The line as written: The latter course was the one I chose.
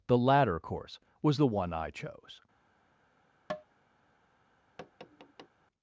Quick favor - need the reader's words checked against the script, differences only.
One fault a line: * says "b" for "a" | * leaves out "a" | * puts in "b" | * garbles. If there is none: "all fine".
all fine